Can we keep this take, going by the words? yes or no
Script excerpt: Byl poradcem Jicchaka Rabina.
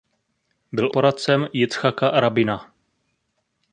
yes